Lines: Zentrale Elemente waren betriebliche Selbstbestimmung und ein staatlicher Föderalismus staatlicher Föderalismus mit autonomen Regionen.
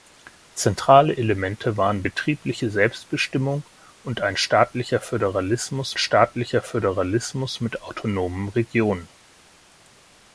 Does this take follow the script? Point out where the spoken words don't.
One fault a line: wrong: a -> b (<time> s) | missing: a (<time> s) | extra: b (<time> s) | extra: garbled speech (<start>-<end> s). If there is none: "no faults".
no faults